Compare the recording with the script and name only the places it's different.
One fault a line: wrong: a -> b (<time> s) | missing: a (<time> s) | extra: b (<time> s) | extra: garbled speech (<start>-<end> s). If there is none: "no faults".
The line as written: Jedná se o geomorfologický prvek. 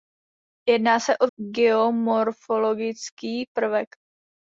no faults